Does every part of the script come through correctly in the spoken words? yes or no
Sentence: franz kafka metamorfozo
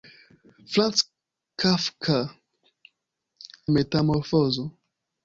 yes